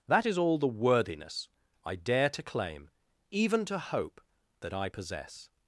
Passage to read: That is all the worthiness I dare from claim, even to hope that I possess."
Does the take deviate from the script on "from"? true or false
true